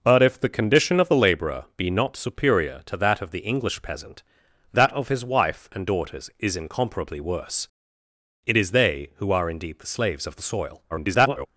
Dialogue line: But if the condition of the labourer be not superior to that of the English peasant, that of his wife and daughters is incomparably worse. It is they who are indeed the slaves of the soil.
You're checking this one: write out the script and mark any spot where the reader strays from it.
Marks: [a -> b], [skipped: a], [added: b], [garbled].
But if the condition of the labourer be not superior to that of the English peasant, that of his wife and daughters is incomparably worse. It is they who are indeed the slaves of the soil. [garbled]